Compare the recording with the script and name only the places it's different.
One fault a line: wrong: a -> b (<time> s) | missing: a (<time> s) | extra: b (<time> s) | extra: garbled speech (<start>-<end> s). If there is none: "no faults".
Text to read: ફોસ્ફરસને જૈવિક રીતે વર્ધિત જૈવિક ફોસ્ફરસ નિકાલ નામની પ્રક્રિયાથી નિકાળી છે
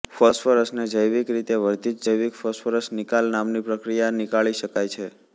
extra: શકાય (4.6 s)